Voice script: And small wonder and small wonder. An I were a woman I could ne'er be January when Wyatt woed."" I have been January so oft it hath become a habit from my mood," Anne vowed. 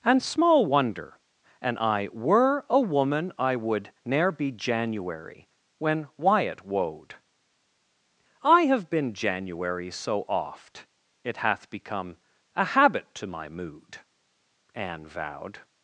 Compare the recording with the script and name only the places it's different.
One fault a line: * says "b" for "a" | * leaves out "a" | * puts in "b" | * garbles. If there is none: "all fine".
* leaves out "and small wonder"
* says "would" for "could"
* says "to" for "from"